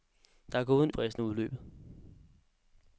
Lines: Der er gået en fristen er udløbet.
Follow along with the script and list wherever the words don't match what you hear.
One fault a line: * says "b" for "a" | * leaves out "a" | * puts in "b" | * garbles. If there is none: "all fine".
all fine